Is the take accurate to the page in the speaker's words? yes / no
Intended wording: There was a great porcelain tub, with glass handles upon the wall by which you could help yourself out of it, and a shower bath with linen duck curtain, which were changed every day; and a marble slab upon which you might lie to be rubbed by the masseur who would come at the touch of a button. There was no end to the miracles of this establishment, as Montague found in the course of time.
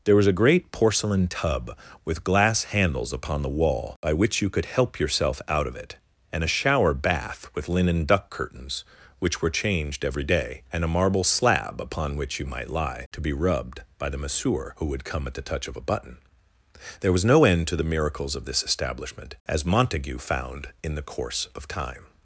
no